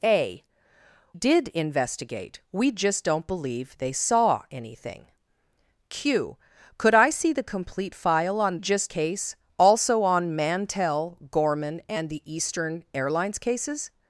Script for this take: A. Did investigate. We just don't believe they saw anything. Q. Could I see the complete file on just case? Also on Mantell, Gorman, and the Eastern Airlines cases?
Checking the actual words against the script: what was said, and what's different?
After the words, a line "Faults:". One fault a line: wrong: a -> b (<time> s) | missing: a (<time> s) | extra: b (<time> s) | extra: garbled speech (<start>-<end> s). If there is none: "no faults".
A. Did investigate. We just don't believe they saw anything. Q. Could I see the complete file on just case? Also on Mantell, Gorman, and the Eastern Airlines cases?
Faults:
no faults